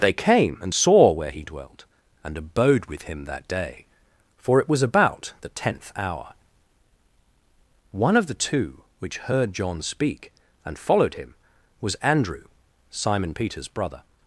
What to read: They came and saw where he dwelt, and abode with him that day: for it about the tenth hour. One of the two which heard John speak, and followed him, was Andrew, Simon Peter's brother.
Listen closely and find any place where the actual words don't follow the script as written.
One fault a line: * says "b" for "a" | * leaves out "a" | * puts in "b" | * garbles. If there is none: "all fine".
* puts in "was"